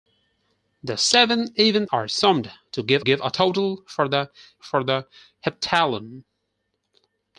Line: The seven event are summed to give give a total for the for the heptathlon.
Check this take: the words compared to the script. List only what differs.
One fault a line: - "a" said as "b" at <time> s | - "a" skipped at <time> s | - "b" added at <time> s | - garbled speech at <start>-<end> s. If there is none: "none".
none